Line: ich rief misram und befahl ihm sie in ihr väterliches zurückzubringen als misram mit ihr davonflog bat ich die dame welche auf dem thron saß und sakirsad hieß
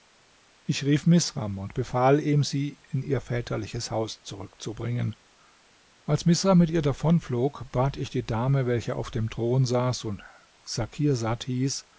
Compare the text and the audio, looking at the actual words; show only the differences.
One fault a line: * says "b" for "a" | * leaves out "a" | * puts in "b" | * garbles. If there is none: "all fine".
* puts in "haus"